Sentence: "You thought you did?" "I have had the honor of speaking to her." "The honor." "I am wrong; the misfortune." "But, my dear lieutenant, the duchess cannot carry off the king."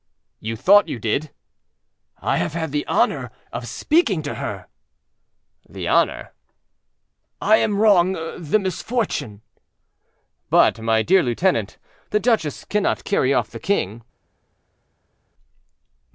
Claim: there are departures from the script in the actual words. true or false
false